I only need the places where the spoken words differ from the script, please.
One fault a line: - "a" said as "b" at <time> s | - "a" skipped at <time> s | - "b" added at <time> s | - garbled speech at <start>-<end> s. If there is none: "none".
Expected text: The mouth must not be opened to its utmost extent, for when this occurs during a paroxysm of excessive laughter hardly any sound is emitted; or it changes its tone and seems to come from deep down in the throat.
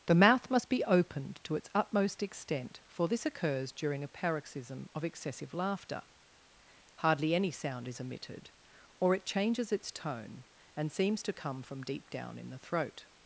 - "not" skipped at 0.7 s
- "when" skipped at 3.1 s